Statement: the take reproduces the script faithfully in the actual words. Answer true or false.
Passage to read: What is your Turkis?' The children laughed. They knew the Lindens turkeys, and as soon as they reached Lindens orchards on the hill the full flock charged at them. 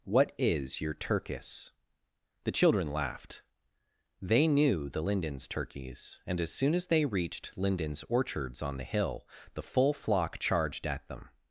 true